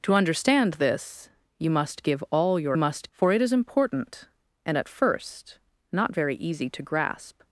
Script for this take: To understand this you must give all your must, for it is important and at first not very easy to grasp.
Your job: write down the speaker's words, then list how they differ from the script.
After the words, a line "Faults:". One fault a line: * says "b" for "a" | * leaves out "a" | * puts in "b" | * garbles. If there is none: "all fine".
To understand this you must give all your must, for it is important and at first not very easy to grasp.
Faults:
all fine